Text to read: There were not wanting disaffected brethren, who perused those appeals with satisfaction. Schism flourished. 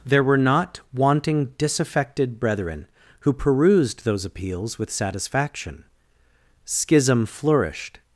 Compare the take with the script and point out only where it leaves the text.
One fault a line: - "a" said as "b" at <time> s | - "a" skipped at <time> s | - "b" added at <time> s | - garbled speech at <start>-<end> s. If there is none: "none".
none